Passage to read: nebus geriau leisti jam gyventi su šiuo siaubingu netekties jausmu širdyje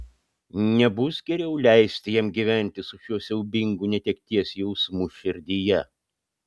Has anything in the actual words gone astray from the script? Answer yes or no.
no